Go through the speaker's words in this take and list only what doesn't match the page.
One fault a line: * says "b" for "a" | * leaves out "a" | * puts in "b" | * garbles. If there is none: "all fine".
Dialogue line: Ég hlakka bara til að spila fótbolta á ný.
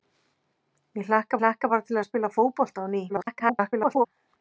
* puts in "hlakka"
* garbles